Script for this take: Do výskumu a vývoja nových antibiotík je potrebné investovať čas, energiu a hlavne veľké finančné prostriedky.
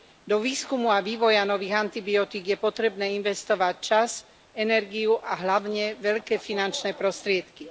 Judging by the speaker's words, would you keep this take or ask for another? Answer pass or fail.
pass